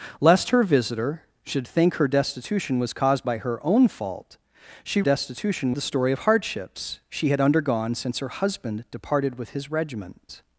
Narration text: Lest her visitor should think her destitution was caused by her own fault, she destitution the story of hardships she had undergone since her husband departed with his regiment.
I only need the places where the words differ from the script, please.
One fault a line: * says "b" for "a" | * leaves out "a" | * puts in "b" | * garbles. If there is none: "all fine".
all fine